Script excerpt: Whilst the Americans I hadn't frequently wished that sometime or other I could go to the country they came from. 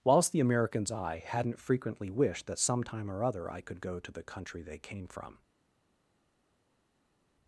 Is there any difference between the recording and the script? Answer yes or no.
no